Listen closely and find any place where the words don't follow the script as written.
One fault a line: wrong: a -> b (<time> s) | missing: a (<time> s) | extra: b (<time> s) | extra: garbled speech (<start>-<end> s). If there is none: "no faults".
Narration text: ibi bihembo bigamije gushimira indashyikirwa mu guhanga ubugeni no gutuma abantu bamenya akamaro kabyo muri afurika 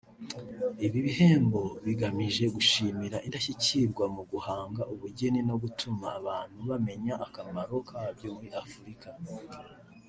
no faults